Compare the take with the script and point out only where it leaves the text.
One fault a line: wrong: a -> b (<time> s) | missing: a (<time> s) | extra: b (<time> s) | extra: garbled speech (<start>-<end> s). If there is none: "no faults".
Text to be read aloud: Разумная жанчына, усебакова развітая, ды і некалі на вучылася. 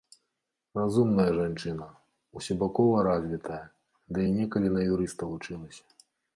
extra: юрыста (4.9 s)